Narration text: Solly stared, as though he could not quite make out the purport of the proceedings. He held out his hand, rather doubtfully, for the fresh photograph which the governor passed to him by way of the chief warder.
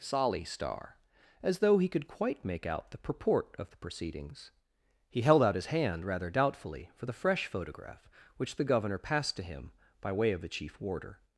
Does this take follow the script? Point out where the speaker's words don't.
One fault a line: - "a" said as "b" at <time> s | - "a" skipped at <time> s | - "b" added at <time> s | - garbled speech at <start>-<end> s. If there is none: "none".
- "stared" said as "star" at 0.4 s
- "not" skipped at 2.1 s